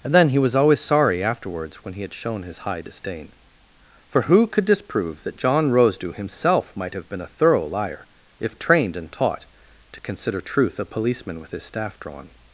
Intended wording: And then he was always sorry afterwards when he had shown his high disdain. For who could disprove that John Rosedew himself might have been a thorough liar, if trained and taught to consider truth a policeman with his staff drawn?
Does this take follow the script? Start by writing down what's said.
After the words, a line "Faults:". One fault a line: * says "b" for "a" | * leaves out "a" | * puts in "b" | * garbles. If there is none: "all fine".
And then he was always sorry afterwards when he had shown his high disdain. For who could disprove that John Rosedew himself might have been a thorough liar, if trained and taught to consider truth a policeman with his staff drawn?
Faults:
all fine